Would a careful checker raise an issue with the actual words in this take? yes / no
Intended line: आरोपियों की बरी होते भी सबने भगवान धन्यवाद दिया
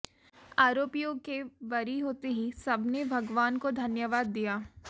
yes